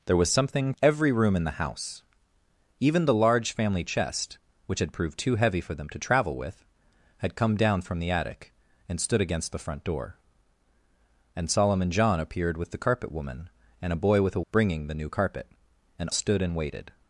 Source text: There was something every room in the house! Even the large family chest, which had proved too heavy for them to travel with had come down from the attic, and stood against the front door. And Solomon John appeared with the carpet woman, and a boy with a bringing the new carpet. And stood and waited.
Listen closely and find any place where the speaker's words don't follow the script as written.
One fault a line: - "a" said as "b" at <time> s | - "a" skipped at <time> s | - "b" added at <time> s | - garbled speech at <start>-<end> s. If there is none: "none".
none